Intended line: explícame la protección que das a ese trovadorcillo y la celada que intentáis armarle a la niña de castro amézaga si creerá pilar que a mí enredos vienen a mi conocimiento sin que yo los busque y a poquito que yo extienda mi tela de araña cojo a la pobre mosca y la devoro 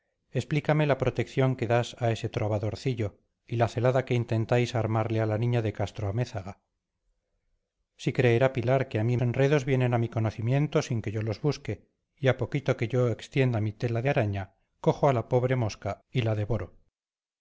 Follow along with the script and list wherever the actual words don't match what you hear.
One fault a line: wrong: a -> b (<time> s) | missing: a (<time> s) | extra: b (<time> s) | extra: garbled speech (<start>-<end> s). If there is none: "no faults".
no faults